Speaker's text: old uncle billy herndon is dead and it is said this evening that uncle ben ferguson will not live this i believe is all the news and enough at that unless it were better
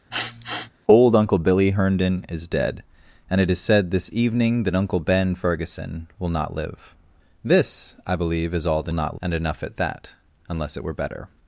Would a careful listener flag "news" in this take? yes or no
yes